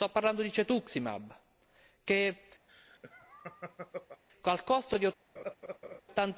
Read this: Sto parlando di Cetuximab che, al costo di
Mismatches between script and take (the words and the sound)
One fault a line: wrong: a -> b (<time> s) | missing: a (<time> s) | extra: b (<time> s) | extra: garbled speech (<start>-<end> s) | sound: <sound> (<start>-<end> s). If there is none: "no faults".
sound: laugh (2.7-4.2 s)
sound: laugh (5.4-6.0 s)